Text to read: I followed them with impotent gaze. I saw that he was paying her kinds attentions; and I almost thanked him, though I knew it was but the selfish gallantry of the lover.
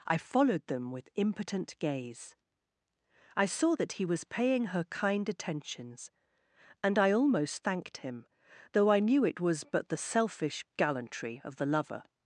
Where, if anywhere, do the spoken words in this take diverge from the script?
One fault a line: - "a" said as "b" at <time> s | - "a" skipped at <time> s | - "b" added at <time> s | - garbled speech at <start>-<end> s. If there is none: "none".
- "kinds" said as "kind" at 4.8 s